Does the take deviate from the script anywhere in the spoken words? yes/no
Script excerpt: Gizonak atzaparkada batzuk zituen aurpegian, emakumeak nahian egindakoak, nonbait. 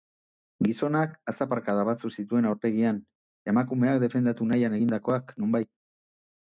yes